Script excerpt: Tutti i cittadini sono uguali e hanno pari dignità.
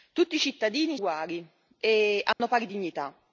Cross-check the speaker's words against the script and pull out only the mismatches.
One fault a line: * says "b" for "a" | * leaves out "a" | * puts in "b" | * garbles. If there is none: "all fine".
* leaves out "sono"